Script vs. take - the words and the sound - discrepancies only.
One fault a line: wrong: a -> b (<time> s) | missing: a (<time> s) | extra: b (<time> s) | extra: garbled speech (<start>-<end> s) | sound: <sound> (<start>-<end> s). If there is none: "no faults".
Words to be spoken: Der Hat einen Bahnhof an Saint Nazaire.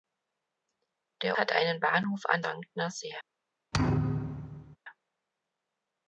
sound: thud (3.7-4.8 s)